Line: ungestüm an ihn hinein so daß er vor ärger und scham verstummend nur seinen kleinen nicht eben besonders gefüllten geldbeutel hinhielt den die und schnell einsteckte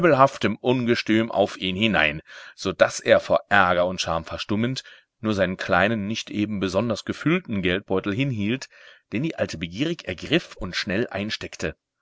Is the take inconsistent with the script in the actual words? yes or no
yes